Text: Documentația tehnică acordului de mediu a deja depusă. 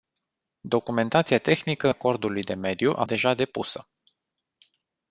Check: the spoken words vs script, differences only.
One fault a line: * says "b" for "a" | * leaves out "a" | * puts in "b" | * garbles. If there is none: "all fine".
all fine